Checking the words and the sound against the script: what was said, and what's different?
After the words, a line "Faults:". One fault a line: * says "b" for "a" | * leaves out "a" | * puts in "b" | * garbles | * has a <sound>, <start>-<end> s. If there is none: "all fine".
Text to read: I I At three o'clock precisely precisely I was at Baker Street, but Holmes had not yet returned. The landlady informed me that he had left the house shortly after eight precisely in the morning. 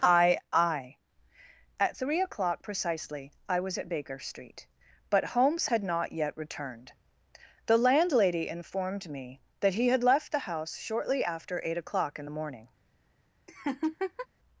I I At three o'clock precisely I was at Baker Street, but Holmes had not yet returned. The landlady informed me that he had left the house shortly after eight o'clock in the morning.
Faults:
* leaves out "precisely"
* says "o'clock" for "precisely"
* has a laugh, 13.5-14.3 s